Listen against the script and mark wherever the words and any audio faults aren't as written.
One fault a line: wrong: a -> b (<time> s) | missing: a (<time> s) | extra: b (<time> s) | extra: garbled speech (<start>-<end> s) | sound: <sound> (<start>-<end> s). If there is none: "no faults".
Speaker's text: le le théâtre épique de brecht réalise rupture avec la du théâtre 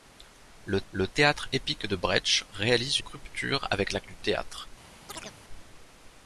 sound: chirp (5.1-5.4 s)